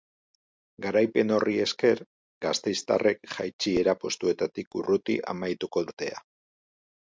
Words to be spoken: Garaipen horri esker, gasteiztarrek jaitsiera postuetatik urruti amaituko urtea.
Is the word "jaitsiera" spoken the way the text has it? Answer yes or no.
yes